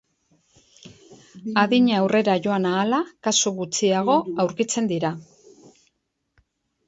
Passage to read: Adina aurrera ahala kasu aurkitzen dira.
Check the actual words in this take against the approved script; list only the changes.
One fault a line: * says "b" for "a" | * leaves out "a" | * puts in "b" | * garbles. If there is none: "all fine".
* puts in "joan"
* puts in "gutxiago"